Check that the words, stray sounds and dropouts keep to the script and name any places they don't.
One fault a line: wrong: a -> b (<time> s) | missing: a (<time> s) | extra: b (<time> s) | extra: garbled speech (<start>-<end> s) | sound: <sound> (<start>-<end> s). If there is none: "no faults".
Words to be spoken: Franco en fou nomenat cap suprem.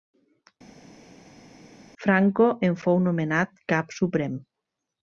no faults